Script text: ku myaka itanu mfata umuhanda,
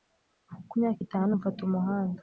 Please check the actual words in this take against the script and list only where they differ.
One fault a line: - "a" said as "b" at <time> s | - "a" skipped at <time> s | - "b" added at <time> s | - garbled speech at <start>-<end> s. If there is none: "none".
none